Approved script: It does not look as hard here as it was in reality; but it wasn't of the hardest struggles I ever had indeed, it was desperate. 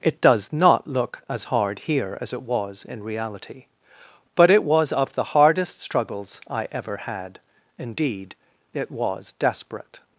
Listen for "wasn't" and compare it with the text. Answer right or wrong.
wrong